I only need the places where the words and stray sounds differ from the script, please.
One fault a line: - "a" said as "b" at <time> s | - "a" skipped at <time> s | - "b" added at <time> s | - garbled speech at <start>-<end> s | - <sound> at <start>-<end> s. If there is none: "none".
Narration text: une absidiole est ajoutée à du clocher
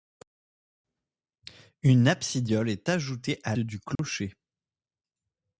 - dropout at 4.0-4.0 s